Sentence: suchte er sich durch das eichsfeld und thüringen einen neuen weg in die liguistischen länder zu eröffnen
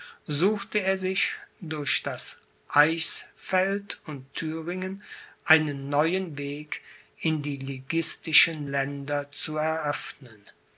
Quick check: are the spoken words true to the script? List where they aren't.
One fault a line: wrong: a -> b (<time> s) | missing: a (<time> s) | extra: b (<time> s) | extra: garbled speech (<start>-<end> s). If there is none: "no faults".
no faults